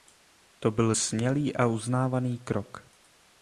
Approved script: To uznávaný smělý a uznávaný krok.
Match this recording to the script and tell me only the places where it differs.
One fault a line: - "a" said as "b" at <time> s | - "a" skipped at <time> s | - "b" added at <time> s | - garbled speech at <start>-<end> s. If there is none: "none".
- "uznávaný" said as "byl" at 0.7 s